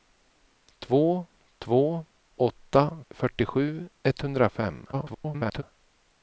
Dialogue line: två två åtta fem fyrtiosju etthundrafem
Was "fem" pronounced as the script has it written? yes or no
no